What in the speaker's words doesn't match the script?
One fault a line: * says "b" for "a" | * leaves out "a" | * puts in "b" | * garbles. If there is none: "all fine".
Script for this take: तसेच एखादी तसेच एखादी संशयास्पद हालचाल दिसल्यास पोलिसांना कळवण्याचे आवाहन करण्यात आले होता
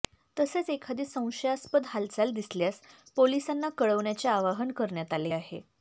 * leaves out "तसेच एखादी"
* says "आहे" for "होता"